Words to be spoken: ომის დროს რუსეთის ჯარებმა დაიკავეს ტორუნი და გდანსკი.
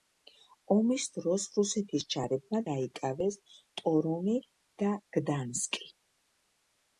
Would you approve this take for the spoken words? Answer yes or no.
yes